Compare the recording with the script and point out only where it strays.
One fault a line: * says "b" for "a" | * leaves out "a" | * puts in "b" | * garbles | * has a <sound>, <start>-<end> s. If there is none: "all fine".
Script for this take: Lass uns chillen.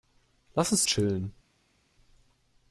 all fine